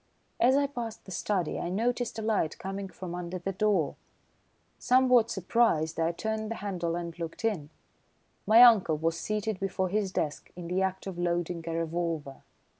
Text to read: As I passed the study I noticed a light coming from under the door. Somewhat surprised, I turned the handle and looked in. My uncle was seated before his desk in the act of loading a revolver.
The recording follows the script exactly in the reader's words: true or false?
true